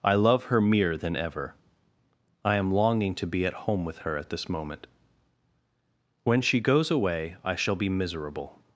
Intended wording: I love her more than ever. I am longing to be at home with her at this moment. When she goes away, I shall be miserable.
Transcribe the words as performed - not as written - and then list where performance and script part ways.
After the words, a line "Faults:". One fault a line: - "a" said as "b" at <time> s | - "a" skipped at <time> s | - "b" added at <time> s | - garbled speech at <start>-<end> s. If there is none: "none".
I love her mere than ever. I am longing to be at home with her at this moment. When she goes away, I shall be miserable.
Faults:
- "more" said as "mere" at 0.6 s